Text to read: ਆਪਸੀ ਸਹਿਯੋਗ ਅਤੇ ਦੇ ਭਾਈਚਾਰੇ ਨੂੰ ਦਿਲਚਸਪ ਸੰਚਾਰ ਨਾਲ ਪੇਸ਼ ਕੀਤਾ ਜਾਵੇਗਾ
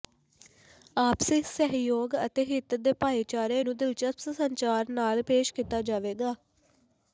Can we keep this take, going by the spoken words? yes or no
no